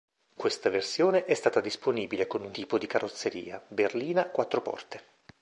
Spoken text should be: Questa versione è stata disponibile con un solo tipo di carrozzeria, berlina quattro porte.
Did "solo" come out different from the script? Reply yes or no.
yes